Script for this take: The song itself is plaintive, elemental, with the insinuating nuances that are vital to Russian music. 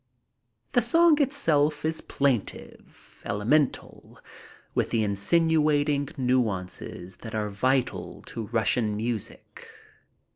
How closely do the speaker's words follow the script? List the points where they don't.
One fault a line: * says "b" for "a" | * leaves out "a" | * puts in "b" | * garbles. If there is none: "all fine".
all fine